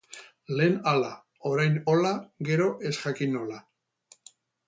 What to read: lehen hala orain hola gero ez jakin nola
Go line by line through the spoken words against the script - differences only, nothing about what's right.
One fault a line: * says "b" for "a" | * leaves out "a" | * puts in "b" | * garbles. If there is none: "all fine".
all fine